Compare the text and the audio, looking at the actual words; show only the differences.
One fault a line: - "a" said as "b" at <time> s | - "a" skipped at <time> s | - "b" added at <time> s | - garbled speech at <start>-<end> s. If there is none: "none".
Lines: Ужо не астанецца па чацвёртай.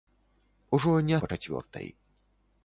- "астанецца" skipped at 1.1 s